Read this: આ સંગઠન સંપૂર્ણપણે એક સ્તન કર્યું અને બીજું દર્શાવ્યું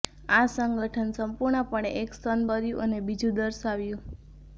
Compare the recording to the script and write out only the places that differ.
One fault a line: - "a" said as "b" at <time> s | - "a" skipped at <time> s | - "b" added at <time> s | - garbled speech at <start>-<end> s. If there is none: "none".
none